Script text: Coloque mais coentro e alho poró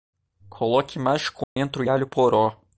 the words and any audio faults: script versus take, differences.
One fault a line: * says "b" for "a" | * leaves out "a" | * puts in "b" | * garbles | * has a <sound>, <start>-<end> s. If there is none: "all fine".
* has a dropout, 1.4-1.6 s